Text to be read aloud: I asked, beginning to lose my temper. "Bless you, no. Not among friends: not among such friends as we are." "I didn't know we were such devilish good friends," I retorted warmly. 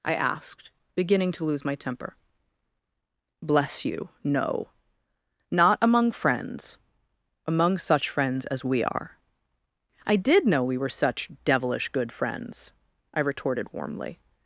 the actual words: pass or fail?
fail